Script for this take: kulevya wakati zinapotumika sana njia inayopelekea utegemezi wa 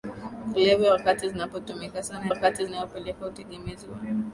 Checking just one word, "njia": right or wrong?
wrong